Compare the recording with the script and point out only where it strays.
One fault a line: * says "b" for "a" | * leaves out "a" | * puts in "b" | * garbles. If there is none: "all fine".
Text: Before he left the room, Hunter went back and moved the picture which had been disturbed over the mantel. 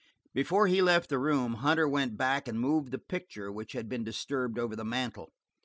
all fine